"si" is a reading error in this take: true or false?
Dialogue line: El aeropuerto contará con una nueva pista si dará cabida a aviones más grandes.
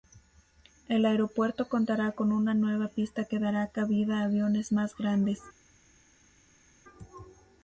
true